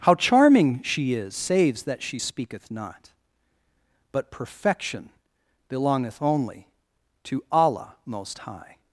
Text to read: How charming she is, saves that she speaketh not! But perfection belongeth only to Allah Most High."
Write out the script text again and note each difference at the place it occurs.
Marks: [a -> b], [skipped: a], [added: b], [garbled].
How charming she is, saves that she speaketh not! But perfection belongeth only to Allah Most High."